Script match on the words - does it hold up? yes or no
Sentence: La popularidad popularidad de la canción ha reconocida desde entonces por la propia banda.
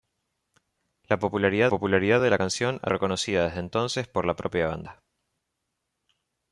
yes